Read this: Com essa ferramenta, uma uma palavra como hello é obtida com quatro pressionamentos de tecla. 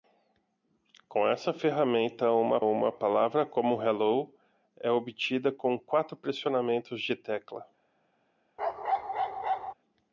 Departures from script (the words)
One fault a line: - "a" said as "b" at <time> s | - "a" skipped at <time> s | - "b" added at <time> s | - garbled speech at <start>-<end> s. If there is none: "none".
none